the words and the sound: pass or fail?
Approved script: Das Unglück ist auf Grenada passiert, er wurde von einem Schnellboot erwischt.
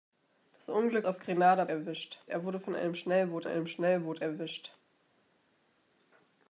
fail